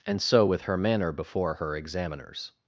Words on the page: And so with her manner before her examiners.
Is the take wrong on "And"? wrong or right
right